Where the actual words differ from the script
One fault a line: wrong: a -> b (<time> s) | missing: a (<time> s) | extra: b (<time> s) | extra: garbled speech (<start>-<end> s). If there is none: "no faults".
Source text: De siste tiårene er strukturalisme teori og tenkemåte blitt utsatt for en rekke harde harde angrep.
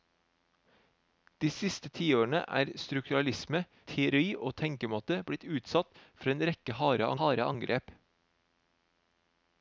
no faults